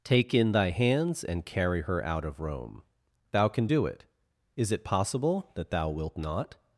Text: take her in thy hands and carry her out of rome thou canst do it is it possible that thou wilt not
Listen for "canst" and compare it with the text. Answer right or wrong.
wrong